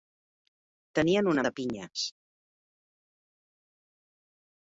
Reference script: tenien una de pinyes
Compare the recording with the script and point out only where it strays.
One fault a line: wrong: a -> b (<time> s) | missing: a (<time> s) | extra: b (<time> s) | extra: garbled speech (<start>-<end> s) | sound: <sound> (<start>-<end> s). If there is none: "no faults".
no faults